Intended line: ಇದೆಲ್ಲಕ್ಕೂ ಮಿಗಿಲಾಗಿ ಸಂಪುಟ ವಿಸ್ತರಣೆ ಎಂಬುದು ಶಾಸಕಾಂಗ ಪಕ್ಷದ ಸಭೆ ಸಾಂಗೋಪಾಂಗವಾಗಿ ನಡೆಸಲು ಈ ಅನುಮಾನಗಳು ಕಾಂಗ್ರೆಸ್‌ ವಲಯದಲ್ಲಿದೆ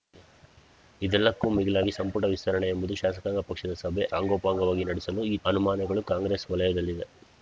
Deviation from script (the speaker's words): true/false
false